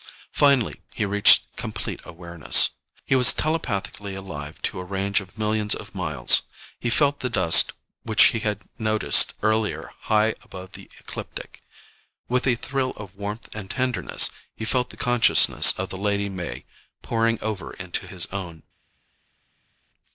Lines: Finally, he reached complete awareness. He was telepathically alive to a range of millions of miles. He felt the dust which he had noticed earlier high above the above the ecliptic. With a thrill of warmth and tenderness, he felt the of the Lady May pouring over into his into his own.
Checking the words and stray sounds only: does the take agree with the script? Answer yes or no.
no